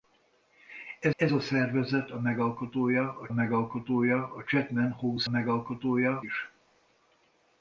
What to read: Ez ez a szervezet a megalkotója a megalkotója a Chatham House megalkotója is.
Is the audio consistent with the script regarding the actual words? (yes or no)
yes